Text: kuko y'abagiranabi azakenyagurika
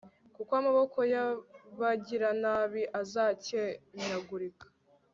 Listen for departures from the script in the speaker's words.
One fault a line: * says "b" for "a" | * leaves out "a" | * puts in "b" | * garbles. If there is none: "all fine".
* puts in "amaboko"